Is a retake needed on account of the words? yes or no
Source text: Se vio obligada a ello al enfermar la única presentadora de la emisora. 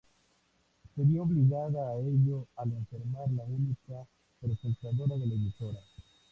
no